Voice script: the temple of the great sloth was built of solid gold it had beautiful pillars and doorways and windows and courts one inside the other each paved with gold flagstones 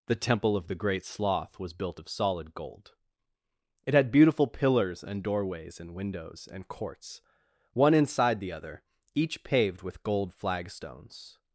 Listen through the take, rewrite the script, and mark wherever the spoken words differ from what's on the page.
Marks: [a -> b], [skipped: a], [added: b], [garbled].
the temple of the great sloth was built of solid gold it had beautiful pillars and doorways and windows and courts one inside the other each paved with gold flagstones